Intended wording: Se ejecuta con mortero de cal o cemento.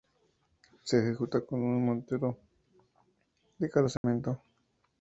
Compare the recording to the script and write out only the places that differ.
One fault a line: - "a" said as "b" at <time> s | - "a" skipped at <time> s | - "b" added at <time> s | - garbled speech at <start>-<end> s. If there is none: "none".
- "un" added at 1.6 s